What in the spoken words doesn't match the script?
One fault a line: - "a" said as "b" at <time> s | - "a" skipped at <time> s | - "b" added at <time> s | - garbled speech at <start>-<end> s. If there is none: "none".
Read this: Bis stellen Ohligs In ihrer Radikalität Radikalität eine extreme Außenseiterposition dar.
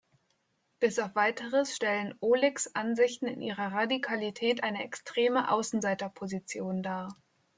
- "auf weiteres" added at 1.0 s
- "Ansichten" added at 2.8 s
- "Radikalität" skipped at 4.6 s